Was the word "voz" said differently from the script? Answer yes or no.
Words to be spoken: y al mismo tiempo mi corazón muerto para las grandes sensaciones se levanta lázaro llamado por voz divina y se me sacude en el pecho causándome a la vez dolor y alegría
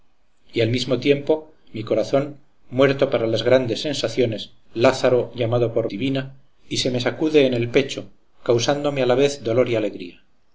yes